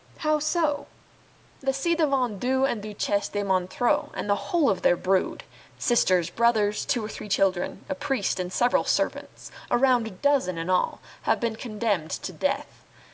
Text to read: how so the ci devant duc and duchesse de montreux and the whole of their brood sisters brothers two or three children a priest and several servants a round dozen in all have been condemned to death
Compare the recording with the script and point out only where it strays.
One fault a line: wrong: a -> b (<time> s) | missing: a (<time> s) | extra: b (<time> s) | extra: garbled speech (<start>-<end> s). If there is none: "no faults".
no faults